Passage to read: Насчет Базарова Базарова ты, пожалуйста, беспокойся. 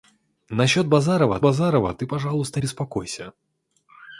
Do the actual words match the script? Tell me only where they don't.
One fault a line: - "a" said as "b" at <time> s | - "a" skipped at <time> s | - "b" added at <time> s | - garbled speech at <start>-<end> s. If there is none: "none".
none